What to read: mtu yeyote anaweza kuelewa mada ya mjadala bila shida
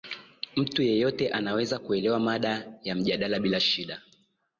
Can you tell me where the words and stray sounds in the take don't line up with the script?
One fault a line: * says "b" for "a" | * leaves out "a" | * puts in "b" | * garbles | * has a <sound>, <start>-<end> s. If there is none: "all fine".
all fine